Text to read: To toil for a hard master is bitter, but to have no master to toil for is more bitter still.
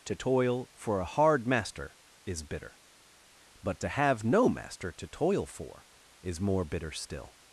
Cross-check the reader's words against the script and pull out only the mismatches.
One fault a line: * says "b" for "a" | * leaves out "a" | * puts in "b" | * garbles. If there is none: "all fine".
all fine